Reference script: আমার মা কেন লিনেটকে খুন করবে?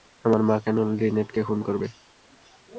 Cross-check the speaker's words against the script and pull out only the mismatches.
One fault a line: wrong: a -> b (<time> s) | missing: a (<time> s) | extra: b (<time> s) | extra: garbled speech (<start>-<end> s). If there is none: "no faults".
no faults